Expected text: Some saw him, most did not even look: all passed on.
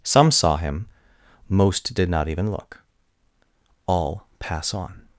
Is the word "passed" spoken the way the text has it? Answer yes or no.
no